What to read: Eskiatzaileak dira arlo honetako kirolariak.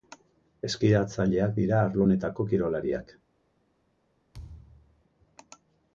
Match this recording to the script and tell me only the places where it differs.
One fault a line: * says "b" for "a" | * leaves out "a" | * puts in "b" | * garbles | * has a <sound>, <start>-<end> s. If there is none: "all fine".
* has a thud, 4.3-5.0 s